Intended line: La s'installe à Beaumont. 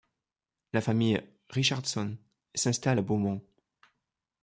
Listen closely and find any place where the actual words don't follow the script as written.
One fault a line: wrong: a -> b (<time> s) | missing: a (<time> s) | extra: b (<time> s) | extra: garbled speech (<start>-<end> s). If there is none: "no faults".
extra: famille Richardson (0.8 s)